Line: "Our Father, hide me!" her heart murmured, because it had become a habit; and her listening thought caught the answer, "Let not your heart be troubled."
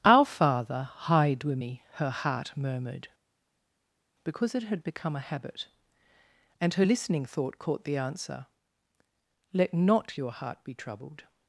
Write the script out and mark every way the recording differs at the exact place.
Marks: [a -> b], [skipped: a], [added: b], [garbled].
"Our Father, hide [added: with] me!" her heart murmured, because it had become a habit; and her listening thought caught the answer, "Let not your heart be troubled."